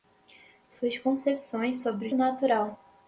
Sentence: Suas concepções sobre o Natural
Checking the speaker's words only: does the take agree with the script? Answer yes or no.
yes